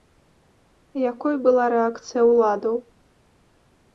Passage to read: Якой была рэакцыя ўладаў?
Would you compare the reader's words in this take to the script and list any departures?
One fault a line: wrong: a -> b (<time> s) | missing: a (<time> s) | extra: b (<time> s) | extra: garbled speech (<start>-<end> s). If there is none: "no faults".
no faults